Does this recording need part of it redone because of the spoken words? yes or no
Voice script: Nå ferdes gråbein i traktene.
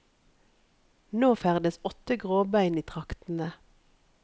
yes